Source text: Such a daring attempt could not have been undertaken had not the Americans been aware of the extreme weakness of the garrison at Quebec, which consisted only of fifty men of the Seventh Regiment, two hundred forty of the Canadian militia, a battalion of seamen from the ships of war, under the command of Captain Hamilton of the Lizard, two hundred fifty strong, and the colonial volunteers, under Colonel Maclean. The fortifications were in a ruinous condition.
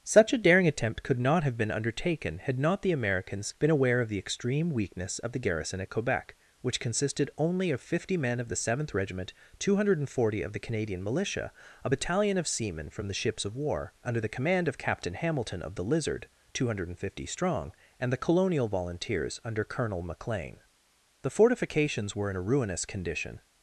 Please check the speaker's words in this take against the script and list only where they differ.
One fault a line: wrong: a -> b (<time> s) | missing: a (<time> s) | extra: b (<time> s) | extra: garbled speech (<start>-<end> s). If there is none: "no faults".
no faults